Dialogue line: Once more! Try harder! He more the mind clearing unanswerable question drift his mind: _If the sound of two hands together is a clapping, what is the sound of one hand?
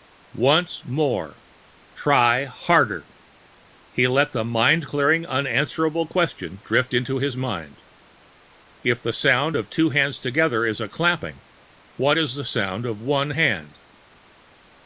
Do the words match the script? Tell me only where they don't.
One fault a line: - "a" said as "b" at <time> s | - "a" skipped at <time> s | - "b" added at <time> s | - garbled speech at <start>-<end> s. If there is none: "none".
- "more" said as "let" at 4.1 s
- "into" added at 7.0 s